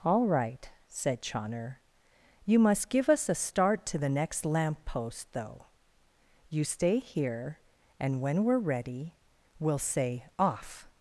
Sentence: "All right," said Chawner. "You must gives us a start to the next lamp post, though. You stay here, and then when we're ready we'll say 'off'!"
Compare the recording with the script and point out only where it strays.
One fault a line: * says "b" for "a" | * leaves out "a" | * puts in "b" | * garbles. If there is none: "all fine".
* says "give" for "gives"
* leaves out "then"